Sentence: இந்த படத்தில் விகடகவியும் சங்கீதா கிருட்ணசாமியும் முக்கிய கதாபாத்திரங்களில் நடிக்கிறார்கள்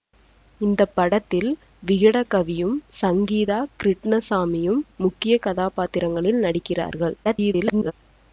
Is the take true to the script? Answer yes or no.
no